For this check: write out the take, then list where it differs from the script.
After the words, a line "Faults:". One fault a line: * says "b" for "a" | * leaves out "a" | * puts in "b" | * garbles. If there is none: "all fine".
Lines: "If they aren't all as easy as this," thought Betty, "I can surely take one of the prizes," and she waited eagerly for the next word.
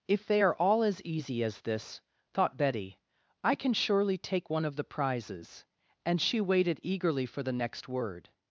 "If they are all as easy as this," thought Betty, "I can surely take one of the prizes," and she waited eagerly for the next word.
Faults:
* says "are" for "aren't"